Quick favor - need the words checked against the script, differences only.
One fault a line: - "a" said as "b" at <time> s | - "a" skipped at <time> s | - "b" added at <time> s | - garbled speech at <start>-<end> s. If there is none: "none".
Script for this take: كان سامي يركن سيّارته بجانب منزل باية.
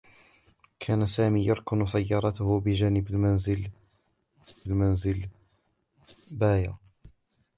- "منزل" added at 4.7 s